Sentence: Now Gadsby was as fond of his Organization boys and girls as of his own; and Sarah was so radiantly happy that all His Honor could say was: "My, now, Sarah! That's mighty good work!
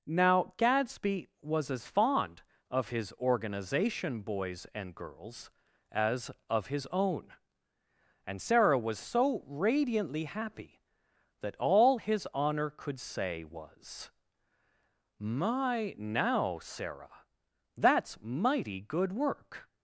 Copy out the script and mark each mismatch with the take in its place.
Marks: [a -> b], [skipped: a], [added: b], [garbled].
Now Gadsby was as fond of his Organization boys and girls as of his own; and Sarah was so radiantly happy that all His Honor could say was: "My, now, Sarah! That's mighty good work!